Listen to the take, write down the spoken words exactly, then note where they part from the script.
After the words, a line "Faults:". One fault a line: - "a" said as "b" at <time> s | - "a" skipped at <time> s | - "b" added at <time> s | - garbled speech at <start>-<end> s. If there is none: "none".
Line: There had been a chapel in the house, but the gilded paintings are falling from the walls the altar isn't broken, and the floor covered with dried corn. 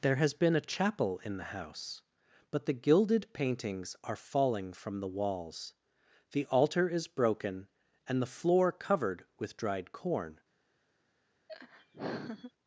There has been a chapel in the house, but the gilded paintings are falling from the walls the altar is broken, and the floor covered with dried corn.
Faults:
- "had" said as "has" at 0.1 s
- "isn't" said as "is" at 6.9 s